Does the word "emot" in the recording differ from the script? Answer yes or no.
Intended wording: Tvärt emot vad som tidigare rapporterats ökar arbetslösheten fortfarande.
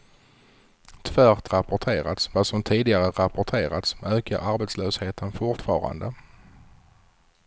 yes